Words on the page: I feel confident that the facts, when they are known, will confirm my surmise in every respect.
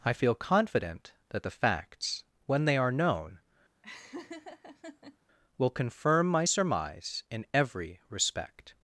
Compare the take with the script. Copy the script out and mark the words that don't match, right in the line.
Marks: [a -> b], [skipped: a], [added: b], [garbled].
I feel confident that the facts, when they are known, will confirm my surmise in every respect.